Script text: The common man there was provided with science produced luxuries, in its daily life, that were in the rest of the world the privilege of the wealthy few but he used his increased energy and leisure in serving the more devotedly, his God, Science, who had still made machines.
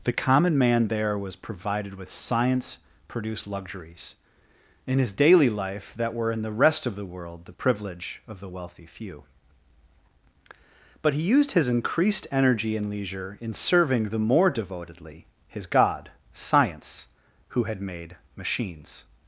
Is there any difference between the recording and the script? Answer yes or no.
yes